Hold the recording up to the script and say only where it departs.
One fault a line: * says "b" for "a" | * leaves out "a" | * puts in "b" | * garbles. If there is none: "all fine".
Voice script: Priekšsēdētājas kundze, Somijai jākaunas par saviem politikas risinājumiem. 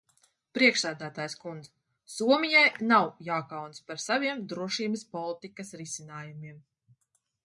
* puts in "nav"
* puts in "drošības"